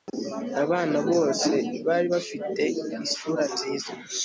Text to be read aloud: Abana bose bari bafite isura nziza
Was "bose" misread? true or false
false